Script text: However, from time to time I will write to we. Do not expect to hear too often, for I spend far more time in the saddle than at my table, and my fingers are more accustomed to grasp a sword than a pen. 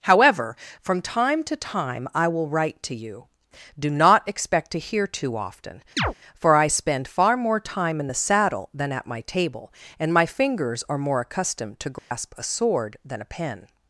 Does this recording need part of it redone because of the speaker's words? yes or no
yes